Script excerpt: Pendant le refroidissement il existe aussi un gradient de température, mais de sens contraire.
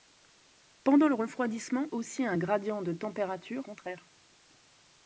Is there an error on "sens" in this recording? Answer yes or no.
yes